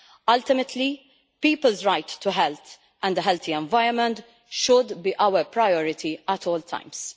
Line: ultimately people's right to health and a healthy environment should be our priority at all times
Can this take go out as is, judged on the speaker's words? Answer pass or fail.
pass